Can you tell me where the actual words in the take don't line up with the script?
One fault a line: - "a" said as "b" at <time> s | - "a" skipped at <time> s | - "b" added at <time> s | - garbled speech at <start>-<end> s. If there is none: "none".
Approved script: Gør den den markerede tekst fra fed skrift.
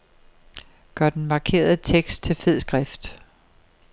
- "den" skipped at 1.2 s
- "fra" said as "til" at 2.2 s